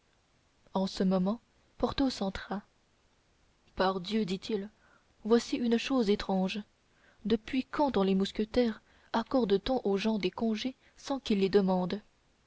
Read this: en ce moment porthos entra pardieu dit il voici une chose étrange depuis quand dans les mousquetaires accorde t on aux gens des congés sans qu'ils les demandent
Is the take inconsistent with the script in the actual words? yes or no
no